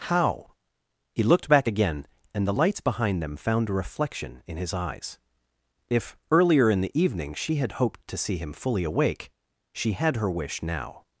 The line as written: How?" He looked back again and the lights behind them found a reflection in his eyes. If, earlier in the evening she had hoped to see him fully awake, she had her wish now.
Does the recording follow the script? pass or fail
pass